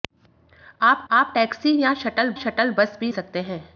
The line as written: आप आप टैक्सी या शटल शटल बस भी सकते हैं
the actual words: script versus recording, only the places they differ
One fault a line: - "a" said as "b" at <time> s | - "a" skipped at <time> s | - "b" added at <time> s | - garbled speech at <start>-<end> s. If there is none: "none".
none